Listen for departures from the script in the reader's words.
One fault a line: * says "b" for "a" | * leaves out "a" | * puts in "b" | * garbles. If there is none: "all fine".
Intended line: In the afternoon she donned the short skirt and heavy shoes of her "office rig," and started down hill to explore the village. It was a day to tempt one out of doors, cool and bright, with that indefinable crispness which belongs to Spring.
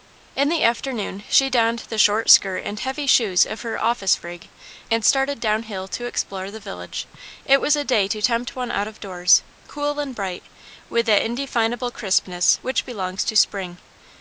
all fine